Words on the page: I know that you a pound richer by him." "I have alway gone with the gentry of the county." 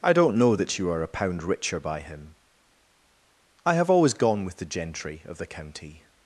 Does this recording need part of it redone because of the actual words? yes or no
yes